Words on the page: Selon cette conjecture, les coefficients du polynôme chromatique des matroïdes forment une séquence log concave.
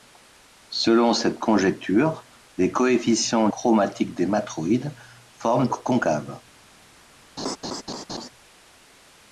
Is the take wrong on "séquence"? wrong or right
wrong